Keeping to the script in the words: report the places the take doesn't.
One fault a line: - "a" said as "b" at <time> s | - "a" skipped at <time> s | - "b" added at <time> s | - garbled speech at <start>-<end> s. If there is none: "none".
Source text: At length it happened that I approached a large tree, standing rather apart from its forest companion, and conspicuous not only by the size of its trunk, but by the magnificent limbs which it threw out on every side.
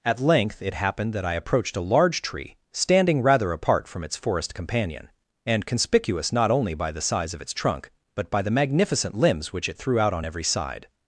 none